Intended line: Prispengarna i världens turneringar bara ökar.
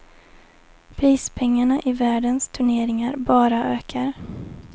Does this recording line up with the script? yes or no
yes